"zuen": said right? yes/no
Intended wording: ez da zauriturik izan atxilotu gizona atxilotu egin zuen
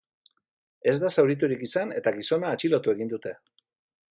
no